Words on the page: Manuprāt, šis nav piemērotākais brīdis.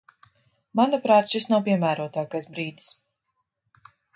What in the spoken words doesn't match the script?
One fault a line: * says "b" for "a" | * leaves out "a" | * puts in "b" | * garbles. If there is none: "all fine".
all fine